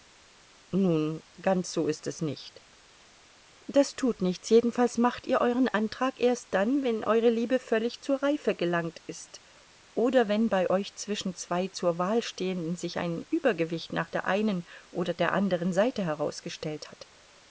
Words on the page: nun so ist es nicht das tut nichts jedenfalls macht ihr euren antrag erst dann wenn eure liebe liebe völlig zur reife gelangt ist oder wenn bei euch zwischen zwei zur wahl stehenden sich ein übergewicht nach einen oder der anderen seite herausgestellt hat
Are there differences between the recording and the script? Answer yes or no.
yes